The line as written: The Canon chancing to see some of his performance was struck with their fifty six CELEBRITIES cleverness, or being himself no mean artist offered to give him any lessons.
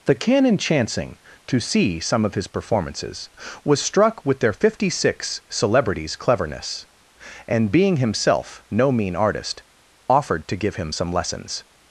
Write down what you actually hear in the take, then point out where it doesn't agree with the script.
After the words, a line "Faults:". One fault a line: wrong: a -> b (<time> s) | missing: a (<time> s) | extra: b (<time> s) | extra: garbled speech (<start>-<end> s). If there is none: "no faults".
The Canon chancing to see some of his performances was struck with their fifty six CELEBRITIES cleverness, and being himself no mean artist offered to give him some lessons.
Faults:
wrong: performance -> performances (2.5 s)
wrong: or -> and (7.5 s)
wrong: any -> some (10.9 s)